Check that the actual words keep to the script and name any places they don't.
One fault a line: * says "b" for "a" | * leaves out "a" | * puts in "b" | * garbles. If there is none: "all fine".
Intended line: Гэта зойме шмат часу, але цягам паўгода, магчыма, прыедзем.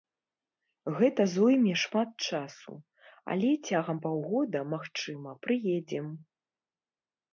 all fine